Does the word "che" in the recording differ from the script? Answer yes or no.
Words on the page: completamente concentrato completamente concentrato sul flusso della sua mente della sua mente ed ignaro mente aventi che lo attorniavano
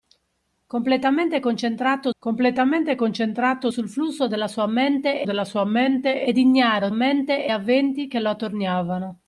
no